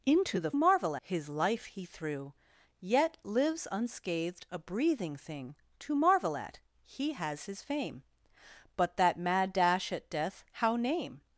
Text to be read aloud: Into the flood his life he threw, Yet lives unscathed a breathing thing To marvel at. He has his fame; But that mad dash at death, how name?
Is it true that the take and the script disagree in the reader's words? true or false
true